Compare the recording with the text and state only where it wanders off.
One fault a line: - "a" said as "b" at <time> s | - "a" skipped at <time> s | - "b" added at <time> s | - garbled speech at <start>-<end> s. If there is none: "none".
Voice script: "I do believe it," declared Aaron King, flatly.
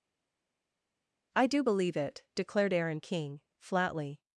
none